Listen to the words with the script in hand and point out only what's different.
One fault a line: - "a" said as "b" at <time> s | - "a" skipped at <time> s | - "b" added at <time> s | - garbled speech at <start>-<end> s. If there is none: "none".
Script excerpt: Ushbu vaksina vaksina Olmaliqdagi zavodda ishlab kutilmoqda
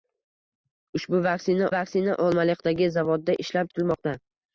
none